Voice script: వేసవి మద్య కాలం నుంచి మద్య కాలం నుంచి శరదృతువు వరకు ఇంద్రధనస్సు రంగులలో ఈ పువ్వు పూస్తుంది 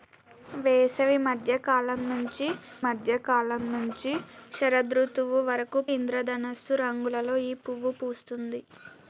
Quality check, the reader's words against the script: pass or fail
pass